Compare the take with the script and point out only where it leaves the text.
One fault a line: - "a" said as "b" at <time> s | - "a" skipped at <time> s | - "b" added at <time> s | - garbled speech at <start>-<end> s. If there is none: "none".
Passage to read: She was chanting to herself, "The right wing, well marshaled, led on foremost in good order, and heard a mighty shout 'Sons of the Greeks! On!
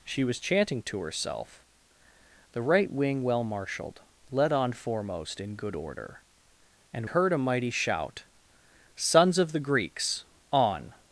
none